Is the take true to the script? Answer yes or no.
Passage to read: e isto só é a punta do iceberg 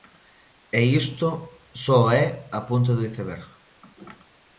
yes